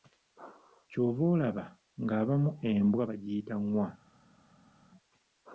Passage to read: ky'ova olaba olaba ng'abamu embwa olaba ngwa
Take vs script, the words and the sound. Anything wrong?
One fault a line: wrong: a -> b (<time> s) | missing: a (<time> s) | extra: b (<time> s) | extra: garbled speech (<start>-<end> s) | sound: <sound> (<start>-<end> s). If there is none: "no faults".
missing: olaba (1.6 s)
wrong: olaba -> bagiyita (3.1 s)